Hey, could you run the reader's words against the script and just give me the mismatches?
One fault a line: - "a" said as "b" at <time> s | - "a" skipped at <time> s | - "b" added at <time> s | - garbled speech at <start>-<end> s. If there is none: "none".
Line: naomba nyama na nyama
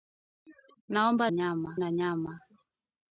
none